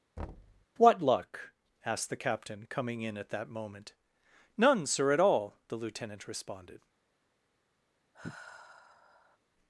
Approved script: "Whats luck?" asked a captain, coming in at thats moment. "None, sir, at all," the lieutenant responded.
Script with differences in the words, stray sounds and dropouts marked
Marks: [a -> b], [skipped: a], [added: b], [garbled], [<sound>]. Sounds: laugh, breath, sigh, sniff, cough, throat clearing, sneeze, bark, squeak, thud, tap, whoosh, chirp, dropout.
[thud] ["Whats -> What] luck?" asked [a -> the] captain, coming in at [thats -> that] moment. "None, sir, at all," the lieutenant responded. [sigh]